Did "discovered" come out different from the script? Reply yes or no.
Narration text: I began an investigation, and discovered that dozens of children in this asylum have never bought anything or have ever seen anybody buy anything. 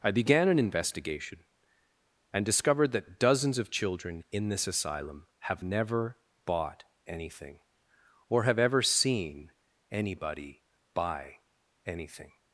no